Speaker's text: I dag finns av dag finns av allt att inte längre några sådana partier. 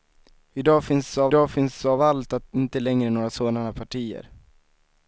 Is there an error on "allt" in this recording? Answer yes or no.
no